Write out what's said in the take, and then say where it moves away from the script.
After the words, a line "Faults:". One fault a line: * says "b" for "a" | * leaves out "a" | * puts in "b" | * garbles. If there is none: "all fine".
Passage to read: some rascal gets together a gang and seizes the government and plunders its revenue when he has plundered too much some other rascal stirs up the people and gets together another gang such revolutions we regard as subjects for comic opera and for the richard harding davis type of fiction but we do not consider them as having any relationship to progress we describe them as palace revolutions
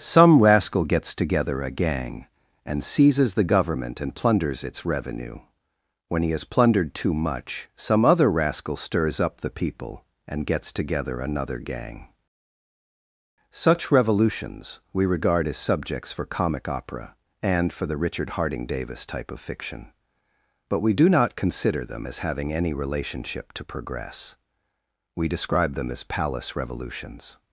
some rascal gets together a gang and seizes the government and plunders its revenue when he has plundered too much some other rascal stirs up the people and gets together another gang such revolutions we regard as subjects for comic opera and for the richard harding davis type of fiction but we do not consider them as having any relationship to progress we describe them as palace revolutions
Faults:
all fine